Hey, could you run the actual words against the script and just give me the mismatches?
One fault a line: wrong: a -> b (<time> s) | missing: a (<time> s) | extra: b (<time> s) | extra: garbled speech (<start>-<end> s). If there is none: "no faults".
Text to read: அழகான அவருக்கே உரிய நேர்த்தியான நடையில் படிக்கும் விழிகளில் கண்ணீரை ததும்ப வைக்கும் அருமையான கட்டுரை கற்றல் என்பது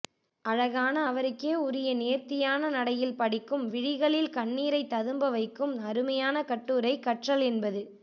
no faults